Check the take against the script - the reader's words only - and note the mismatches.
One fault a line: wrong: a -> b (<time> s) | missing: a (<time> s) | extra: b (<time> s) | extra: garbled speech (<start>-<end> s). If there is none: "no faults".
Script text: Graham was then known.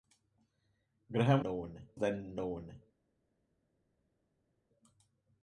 wrong: was -> known (1.4 s)